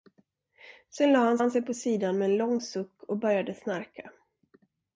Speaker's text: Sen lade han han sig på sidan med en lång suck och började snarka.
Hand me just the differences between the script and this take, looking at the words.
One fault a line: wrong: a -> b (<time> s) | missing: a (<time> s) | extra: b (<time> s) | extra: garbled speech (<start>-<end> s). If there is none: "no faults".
no faults